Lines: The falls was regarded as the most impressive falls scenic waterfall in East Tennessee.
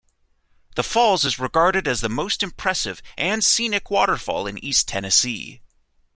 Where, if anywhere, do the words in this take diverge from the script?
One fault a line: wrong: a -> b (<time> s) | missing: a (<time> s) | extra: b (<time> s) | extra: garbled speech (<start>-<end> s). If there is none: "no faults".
wrong: was -> is (1.2 s)
wrong: falls -> and (3.2 s)